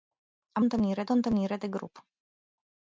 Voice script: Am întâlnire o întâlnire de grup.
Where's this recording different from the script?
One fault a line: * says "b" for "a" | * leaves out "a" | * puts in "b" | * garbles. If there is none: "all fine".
all fine